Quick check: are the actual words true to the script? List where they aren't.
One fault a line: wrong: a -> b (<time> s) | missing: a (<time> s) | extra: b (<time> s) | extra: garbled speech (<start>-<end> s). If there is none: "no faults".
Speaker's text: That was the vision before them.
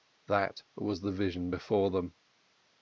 no faults